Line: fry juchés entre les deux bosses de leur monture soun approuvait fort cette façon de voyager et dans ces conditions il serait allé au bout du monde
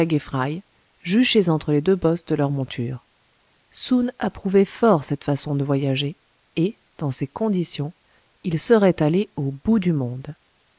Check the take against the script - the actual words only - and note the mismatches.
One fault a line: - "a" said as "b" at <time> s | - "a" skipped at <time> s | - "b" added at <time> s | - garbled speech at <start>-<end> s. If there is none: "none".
none